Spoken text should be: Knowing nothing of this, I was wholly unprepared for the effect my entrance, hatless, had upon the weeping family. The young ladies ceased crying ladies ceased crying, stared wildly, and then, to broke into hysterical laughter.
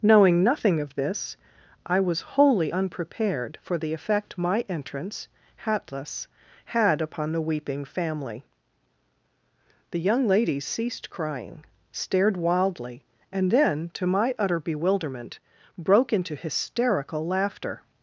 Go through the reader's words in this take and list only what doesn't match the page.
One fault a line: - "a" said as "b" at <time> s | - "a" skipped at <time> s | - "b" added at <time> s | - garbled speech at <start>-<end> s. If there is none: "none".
- "ladies ceased crying" skipped at 11.6 s
- "my utter bewilderment" added at 14.1 s